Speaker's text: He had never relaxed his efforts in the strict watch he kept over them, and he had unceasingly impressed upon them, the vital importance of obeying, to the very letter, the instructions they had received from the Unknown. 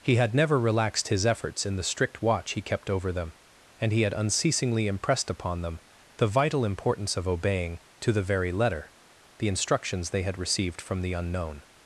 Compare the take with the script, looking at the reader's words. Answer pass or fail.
pass